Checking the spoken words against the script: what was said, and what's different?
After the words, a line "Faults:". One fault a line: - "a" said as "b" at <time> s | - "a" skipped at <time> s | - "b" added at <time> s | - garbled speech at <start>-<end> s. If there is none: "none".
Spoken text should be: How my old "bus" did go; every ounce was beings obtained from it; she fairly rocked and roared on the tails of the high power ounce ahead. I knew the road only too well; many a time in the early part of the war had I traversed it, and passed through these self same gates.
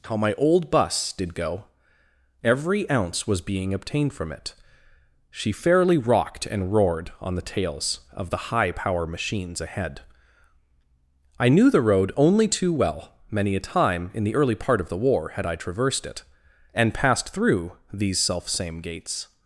How my old "bus" did go; every ounce was being obtained from it; she fairly rocked and roared on the tails of the high power machines ahead. I knew the road only too well; many a time in the early part of the war had I traversed it, and passed through these self same gates.
Faults:
- "beings" said as "being" at 3.4 s
- "ounce" said as "machines" at 9.0 s